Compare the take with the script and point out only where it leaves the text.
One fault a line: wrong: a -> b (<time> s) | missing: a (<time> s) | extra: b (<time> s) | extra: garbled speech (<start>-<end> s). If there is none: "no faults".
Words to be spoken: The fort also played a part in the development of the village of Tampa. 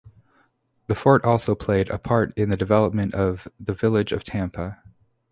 no faults